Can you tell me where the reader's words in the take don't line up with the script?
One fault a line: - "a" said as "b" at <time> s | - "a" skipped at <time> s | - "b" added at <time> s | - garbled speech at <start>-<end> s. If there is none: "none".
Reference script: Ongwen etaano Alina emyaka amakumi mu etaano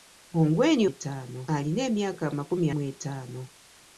none